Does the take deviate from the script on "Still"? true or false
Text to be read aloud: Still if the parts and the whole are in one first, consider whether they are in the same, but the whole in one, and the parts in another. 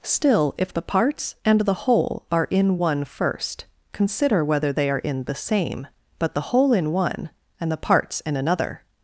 false